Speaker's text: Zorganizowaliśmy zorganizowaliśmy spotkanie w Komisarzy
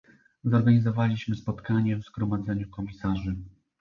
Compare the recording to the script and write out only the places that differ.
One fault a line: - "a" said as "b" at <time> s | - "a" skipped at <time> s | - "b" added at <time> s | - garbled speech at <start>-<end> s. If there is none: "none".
- "zorganizowaliśmy" skipped at 1.4 s
- "Zgromadzeniu" added at 2.0 s